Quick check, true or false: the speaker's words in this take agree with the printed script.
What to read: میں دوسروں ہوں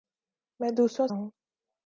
true